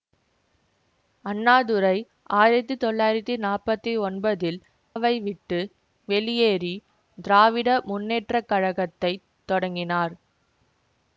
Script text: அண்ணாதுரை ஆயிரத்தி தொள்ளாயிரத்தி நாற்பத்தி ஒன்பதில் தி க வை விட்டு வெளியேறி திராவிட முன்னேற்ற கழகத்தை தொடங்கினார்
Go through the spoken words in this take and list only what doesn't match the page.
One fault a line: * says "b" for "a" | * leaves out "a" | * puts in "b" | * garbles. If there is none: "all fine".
* leaves out "தி க"